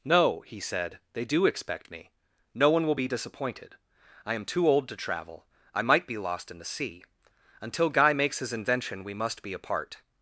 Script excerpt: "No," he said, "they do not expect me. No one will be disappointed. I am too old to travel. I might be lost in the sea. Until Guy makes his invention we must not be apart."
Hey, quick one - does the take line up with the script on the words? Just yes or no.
no